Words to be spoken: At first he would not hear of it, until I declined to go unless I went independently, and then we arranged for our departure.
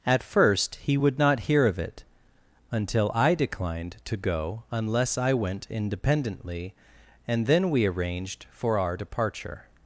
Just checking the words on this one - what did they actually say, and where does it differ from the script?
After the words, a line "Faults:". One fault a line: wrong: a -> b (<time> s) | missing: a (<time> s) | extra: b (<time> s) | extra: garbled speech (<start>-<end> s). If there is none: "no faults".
At first he would not hear of it, until I declined to go unless I went independently, and then we arranged for our departure.
Faults:
no faults